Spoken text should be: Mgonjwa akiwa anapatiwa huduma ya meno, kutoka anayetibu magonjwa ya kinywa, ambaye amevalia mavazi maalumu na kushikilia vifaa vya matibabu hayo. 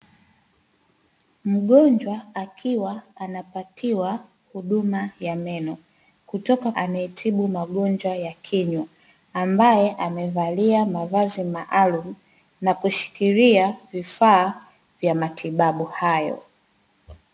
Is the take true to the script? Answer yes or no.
yes